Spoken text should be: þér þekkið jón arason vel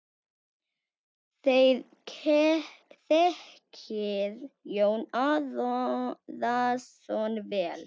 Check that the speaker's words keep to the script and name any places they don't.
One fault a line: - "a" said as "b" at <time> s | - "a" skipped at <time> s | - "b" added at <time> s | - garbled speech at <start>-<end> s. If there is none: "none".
none